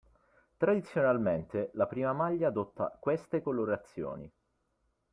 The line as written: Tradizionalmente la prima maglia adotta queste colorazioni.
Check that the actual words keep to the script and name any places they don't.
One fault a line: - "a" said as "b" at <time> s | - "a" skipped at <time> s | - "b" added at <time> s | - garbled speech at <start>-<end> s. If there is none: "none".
none